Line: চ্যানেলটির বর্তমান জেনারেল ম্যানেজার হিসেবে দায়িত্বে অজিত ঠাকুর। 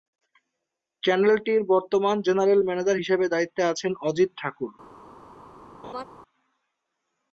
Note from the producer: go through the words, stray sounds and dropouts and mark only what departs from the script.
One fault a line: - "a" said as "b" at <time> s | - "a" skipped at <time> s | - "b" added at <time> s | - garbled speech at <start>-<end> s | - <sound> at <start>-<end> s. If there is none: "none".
- "আছেন" added at 3.6 s
- laugh at 5.8-6.0 s